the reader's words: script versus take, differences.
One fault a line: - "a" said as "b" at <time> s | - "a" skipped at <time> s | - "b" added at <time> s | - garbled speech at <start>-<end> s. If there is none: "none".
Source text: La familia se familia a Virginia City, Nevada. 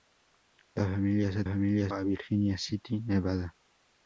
none